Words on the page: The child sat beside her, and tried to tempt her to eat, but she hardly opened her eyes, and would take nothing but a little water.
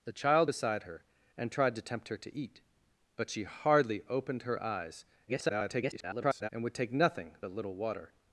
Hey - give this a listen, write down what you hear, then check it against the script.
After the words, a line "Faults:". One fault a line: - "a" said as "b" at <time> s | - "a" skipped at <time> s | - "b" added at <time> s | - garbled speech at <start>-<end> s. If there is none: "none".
The child beside her, and tried to tempt her to eat, but she hardly opened her eyes, [garbled] and would take nothing a little water.
Faults:
- "sat" skipped at 0.5 s
- garbled speech at 5.3-6.5 s
- "but" skipped at 7.4 s